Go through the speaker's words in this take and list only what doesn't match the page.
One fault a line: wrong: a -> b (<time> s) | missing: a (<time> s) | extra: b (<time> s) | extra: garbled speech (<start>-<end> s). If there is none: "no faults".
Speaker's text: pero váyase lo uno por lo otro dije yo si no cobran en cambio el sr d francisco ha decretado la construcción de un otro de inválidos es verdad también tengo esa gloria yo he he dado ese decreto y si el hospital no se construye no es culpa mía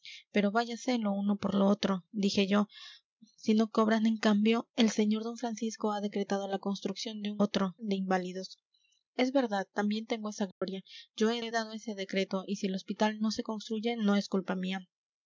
no faults